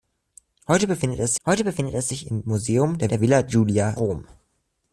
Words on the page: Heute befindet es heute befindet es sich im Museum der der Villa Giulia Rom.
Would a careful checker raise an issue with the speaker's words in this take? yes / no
no